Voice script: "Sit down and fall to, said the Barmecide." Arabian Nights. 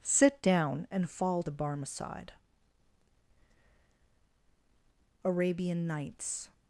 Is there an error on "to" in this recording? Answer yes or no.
yes